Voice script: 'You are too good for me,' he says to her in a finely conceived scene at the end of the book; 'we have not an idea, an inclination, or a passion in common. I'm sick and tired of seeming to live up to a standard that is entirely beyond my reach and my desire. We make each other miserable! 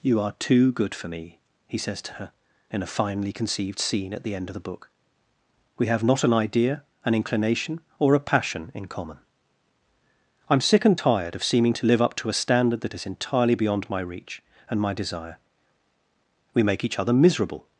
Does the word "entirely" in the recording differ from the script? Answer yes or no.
no